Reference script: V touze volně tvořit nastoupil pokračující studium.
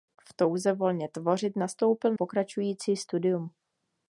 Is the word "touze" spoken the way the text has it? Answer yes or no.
yes